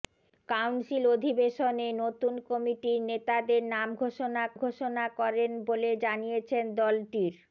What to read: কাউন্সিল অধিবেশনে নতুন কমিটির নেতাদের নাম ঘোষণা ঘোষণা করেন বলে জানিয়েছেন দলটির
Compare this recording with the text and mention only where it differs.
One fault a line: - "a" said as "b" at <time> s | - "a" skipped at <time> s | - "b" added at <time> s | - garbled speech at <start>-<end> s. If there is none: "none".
none